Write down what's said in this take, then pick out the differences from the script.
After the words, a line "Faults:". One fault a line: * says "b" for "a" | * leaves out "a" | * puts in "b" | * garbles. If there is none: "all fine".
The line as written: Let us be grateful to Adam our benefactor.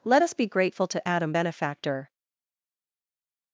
Let us be grateful to Adam benefactor.
Faults:
* leaves out "our"